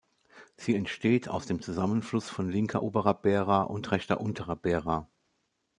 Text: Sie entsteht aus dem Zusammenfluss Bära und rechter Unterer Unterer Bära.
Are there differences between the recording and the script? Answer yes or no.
yes